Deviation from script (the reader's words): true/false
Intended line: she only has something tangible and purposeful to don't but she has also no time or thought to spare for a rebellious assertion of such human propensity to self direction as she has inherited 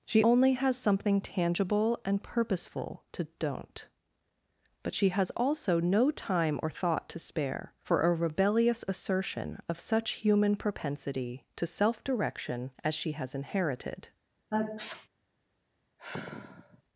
false